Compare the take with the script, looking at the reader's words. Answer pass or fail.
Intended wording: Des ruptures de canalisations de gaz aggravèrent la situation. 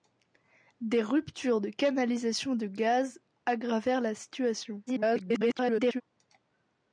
fail